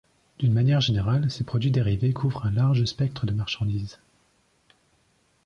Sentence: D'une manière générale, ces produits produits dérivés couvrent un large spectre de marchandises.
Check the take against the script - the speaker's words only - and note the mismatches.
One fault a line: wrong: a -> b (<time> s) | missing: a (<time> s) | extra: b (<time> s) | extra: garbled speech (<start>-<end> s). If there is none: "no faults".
missing: produits (1.7 s)